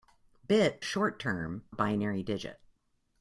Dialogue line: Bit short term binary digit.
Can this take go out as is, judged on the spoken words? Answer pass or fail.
pass